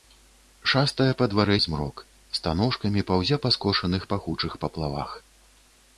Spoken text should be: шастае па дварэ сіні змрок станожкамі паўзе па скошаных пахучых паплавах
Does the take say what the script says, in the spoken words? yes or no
no